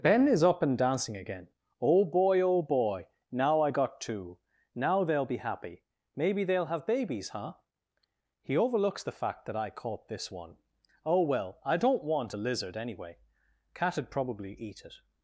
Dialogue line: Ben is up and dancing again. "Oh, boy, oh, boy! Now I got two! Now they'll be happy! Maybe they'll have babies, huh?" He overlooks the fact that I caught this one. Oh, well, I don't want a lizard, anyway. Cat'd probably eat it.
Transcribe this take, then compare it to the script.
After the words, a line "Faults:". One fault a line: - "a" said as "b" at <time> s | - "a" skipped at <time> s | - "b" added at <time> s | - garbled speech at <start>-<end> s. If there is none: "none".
Ben is up and dancing again. "Oh, boy, oh, boy! Now I got two! Now they'll be happy! Maybe they'll have babies, huh?" He overlooks the fact that I caught this one. Oh, well, I don't want a lizard, anyway. Cat'd probably eat it.
Faults:
none